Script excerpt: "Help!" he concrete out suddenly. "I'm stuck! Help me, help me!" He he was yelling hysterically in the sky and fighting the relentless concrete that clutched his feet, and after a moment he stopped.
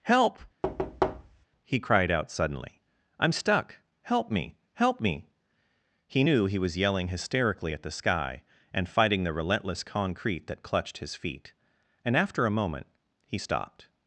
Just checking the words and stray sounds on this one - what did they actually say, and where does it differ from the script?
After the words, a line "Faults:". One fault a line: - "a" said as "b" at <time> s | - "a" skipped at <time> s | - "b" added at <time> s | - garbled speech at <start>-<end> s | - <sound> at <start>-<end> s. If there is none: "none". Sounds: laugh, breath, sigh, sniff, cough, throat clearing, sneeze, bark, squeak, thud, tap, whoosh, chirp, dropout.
"Help!" he cried out suddenly. "I'm stuck! Help me, help me!" He knew he was yelling hysterically at the sky and fighting the relentless concrete that clutched his feet, and after a moment he stopped.
Faults:
- thud at 0.6-1.5 s
- "concrete" said as "cried" at 1.8 s
- "knew" added at 6.2 s
- "in" said as "at" at 7.7 s